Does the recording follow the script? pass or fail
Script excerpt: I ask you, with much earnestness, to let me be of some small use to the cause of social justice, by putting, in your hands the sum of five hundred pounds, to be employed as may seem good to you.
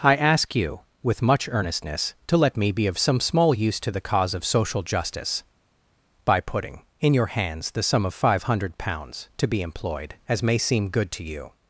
pass